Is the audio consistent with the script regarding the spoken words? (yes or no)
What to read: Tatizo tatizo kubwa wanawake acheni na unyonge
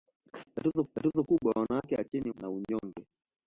yes